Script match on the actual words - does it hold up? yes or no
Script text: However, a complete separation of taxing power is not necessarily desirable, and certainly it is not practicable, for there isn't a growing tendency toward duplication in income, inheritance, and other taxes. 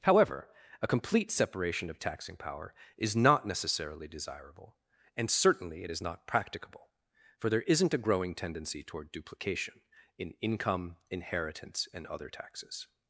yes